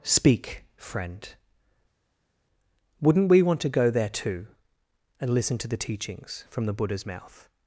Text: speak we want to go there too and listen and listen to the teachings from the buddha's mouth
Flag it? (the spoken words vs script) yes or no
yes